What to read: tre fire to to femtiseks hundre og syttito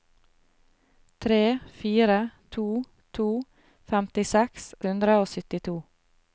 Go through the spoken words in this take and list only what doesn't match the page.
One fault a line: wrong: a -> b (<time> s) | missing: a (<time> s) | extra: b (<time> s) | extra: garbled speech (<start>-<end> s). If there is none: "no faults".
no faults